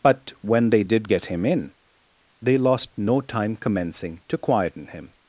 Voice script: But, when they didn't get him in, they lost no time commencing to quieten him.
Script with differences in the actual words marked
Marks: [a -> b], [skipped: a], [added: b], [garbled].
But, when they [didn't -> did] get him in, they lost no time commencing to quieten him.